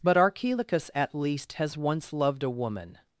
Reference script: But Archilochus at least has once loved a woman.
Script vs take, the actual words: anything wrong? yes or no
no